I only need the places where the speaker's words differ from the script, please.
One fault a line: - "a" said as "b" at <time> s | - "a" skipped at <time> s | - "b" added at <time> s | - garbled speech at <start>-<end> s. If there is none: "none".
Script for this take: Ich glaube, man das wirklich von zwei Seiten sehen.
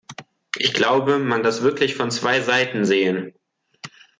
none